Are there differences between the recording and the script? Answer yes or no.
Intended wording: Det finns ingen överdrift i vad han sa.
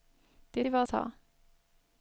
yes